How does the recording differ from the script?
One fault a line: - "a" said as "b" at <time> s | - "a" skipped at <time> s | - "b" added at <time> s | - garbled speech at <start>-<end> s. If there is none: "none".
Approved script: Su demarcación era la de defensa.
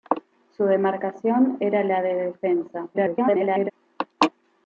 - garbled speech at 2.9-3.7 s